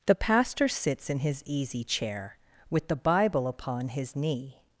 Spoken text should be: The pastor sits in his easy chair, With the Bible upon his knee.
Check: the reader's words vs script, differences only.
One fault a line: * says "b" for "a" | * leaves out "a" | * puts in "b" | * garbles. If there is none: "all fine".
all fine